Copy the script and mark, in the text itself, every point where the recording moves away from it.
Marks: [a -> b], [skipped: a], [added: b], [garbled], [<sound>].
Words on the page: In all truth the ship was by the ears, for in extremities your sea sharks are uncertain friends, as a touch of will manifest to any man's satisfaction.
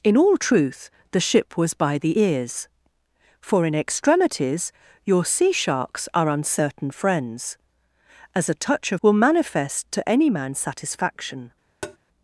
In all truth the ship was by the ears, for in extremities your sea sharks are uncertain friends, as a touch of will manifest to any man's satisfaction. [tap]